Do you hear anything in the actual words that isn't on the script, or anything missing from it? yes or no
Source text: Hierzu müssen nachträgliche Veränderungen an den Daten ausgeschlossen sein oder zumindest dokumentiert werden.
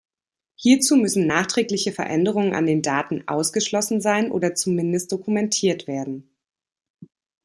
no